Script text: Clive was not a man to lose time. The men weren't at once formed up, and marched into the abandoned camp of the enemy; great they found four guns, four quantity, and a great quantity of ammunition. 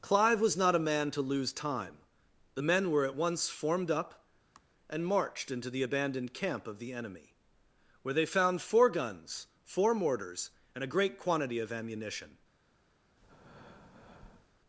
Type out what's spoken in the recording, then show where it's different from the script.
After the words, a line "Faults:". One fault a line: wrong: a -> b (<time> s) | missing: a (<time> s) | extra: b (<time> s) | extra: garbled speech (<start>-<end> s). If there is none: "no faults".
Clive was not a man to lose time. The men were at once formed up, and marched into the abandoned camp of the enemy; where they found four guns, four mortars, and a great quantity of ammunition.
Faults:
wrong: weren't -> were (2.9 s)
wrong: great -> where (8.0 s)
wrong: quantity -> mortars (9.9 s)